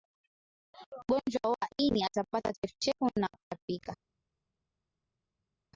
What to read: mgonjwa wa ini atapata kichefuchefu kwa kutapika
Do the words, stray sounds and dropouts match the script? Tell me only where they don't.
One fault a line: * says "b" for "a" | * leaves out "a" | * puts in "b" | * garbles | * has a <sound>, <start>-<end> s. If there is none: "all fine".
* says "na" for "kwa"